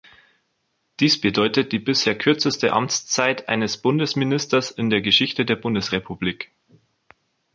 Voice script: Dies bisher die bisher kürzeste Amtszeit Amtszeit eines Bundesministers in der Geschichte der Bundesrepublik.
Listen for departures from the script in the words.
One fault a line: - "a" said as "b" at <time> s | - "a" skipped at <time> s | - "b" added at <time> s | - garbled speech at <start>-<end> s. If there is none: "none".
- "bisher" said as "bedeutet" at 1.2 s
- "Amtszeit" skipped at 3.5 s